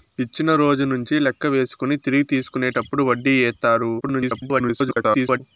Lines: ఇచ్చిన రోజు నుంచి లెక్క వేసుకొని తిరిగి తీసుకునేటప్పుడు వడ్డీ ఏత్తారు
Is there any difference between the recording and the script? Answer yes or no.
yes